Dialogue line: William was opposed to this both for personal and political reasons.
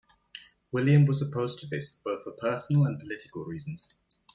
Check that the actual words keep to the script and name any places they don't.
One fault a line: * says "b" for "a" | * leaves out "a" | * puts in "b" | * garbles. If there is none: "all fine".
all fine